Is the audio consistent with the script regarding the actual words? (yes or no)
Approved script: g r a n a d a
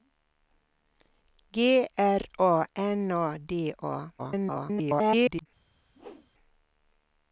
no